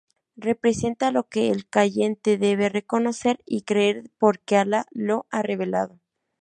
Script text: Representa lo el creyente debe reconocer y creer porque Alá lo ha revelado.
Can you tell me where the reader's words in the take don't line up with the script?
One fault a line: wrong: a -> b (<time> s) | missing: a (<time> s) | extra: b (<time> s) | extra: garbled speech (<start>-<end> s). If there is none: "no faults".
extra: que (1.3 s)